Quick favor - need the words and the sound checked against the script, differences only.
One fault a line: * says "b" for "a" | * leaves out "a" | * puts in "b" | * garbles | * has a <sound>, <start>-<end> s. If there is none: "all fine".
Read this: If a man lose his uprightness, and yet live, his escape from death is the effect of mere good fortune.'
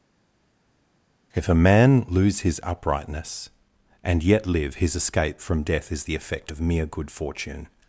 all fine